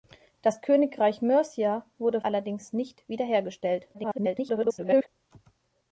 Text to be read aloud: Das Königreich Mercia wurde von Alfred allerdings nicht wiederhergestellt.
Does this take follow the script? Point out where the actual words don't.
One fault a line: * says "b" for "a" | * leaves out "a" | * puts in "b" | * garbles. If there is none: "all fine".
* leaves out "von Alfred"
* garbles